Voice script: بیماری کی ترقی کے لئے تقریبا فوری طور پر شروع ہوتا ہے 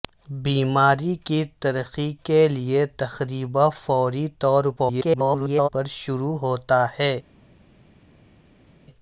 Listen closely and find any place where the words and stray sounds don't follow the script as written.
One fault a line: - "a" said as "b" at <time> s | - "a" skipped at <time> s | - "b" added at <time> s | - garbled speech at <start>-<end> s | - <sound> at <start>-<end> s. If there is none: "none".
- garbled speech at 4.8-5.7 s